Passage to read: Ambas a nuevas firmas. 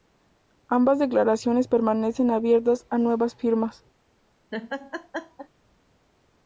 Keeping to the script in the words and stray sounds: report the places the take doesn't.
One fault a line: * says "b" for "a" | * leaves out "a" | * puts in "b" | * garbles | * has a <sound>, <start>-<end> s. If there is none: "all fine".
* puts in "declaraciones permanecen abiertas"
* has a laugh, 4.5-5.5 s